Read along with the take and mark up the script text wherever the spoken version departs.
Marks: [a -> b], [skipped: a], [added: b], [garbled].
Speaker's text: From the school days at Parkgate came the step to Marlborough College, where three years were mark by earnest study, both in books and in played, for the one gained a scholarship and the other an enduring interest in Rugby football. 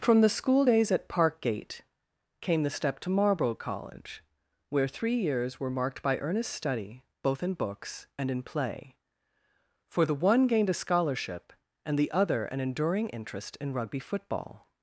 From the school days at Parkgate came the step to Marlborough College, where three years were [mark -> marked] by earnest study, both in books and in [played, -> play] for the one gained a scholarship and the other an enduring interest in Rugby football.